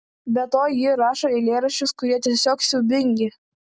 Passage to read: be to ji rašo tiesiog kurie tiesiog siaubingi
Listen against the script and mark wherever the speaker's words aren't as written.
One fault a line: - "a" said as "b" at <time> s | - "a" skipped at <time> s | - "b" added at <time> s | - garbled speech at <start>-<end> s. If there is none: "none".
- "tiesiog" said as "eilėraščius" at 1.4 s